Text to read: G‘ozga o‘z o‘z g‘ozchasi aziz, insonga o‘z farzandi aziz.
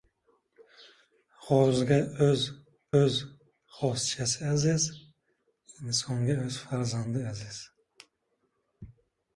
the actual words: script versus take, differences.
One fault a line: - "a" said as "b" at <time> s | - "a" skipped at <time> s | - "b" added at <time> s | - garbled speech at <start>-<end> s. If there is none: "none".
none